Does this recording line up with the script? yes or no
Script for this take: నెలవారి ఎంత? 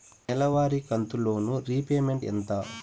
no